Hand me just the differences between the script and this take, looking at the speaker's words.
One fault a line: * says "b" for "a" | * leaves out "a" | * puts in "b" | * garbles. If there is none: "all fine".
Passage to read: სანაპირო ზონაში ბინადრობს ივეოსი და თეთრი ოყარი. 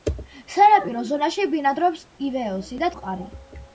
* leaves out "თეთრი"